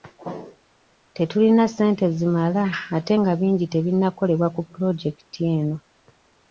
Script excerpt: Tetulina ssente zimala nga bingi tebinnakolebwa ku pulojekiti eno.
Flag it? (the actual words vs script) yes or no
yes